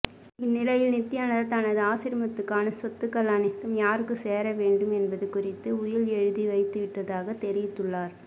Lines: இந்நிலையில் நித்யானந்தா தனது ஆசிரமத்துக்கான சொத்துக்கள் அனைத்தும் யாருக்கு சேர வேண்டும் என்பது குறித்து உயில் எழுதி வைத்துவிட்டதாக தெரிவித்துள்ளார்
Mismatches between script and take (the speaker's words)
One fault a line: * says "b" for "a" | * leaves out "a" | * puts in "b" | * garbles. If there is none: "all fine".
all fine